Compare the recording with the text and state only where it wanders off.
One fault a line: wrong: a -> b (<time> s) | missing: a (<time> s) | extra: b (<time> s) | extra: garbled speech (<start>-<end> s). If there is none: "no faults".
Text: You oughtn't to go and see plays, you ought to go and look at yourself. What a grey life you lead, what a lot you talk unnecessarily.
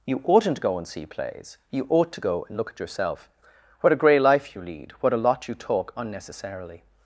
missing: to (0.6 s)